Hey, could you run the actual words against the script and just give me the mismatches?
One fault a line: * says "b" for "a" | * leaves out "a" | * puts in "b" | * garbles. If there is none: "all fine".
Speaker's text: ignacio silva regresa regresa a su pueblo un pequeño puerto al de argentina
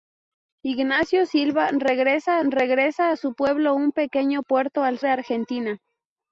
all fine